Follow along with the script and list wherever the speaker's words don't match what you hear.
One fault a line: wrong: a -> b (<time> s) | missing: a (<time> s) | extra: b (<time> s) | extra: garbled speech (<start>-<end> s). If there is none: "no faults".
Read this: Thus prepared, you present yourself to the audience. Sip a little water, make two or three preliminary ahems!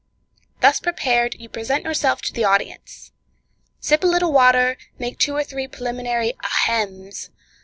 no faults